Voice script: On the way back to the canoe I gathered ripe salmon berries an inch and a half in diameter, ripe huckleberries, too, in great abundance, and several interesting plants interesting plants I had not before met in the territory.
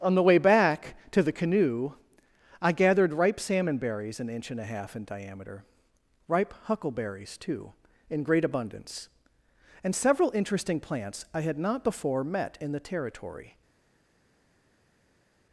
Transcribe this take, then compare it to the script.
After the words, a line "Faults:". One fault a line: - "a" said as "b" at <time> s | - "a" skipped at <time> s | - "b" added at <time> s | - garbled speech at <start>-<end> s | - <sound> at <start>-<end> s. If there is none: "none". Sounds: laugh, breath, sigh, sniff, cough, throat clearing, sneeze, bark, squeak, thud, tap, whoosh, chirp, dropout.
On the way back to the canoe I gathered ripe salmon berries an inch and a half in diameter, ripe huckleberries, too, in great abundance, and several interesting plants I had not before met in the territory.
Faults:
- "interesting plants" skipped at 11.2 s